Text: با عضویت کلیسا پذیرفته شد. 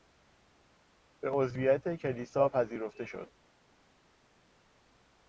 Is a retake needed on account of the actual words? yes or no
yes